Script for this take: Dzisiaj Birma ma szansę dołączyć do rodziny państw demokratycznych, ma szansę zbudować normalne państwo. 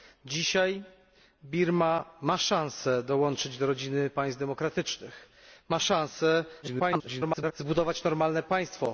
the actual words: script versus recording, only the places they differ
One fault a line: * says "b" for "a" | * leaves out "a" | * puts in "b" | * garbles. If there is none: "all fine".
* garbles